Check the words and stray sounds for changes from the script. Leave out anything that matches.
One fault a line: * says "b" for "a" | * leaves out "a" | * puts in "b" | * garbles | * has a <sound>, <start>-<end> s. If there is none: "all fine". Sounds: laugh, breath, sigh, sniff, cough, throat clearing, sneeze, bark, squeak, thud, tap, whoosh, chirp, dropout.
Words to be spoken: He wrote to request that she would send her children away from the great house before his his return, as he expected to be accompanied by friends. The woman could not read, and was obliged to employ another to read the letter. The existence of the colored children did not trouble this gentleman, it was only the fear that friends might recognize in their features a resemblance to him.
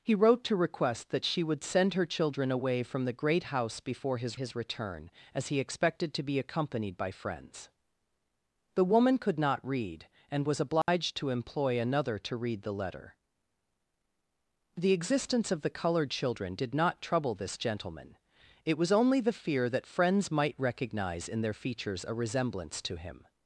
* has a dropout, 10.8-10.9 s